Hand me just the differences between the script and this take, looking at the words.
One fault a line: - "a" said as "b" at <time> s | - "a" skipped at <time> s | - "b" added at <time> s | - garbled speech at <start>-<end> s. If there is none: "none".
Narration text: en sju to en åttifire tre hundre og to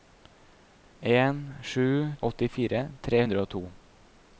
- "to en" skipped at 2.1 s